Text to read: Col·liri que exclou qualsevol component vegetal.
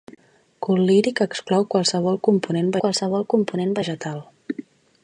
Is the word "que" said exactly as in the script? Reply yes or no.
yes